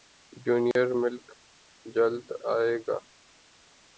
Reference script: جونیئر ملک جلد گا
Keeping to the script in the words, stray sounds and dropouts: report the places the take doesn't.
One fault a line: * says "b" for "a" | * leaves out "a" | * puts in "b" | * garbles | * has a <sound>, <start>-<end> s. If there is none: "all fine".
* has a dropout, 0.7-0.8 s
* puts in "ائے"